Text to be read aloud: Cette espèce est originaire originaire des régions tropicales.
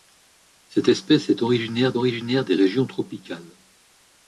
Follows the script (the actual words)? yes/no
yes